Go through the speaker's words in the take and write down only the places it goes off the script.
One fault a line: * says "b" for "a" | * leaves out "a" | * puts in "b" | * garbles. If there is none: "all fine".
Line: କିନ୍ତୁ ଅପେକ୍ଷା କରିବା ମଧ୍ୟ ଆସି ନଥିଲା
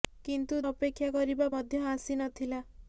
all fine